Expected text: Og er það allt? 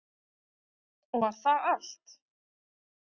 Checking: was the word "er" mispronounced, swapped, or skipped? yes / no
yes